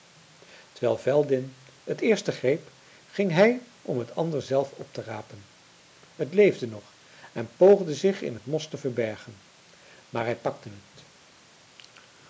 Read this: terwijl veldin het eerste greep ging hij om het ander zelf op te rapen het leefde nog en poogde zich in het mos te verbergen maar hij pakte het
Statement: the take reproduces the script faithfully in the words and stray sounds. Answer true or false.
true